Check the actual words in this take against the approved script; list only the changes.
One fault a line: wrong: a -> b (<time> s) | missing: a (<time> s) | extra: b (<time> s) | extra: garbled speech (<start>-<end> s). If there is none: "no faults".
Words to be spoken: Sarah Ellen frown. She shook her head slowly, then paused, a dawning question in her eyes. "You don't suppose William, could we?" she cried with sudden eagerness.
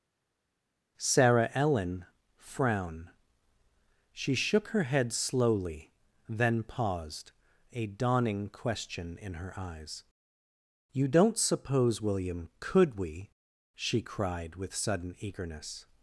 no faults